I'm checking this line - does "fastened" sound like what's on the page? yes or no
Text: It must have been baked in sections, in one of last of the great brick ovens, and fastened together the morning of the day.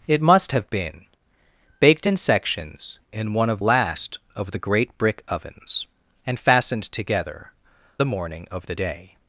yes